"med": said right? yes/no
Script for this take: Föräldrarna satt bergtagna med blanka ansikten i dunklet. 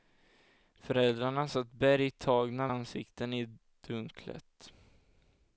no